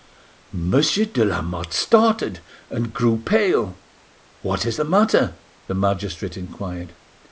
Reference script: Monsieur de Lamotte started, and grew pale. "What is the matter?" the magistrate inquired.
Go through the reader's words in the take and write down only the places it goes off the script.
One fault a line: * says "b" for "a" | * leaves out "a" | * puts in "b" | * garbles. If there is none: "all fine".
all fine